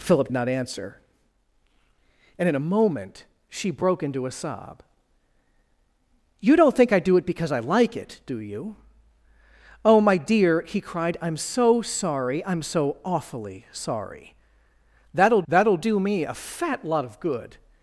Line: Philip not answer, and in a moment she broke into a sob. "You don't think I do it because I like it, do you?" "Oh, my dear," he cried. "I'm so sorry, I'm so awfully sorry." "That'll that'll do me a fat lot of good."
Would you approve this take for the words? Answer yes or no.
yes